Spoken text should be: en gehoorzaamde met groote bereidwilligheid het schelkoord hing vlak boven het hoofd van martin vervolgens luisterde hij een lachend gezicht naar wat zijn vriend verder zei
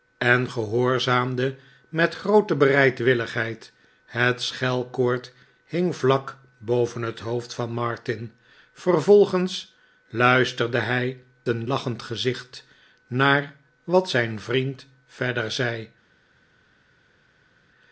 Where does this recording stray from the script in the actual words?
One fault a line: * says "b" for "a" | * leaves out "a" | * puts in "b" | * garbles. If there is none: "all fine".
all fine